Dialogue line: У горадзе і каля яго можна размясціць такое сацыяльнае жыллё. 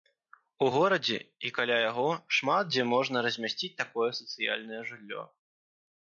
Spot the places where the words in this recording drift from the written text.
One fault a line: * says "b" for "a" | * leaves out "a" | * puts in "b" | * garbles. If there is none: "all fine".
* puts in "шмат дзе"